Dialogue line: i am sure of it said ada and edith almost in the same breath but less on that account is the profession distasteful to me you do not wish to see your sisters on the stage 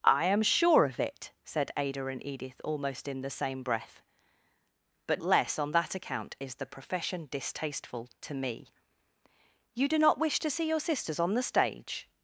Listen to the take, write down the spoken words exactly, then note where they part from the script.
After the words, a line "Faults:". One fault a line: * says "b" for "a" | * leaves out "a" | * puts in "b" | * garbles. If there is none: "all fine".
i am sure of it said ada and edith almost in the same breath but less on that account is the profession distasteful to me you do not wish to see your sisters on the stage
Faults:
all fine